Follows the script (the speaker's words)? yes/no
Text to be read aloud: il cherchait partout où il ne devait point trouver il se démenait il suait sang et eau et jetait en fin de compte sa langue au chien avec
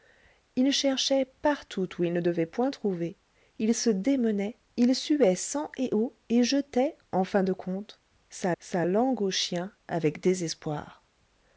no